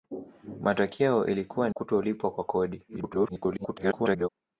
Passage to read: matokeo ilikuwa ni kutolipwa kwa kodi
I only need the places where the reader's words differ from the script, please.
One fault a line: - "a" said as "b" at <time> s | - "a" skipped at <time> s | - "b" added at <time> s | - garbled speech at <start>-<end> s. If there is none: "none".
- "ni" skipped at 1.7 s
- garbled speech at 2.9-4.3 s